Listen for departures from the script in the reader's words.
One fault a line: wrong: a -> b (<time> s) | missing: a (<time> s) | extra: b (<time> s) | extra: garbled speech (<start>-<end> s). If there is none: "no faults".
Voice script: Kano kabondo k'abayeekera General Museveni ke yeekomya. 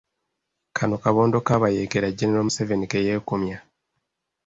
no faults